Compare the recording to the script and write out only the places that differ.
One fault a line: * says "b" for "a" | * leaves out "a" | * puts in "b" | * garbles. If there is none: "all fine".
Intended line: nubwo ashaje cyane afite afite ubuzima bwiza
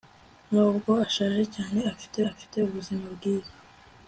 all fine